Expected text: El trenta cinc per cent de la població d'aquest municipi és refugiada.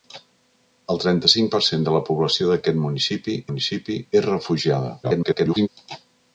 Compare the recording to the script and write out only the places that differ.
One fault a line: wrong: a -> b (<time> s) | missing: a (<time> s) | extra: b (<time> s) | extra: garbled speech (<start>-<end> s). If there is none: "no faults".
extra: municipi (3.5 s)
extra: garbled speech (5.0-5.7 s)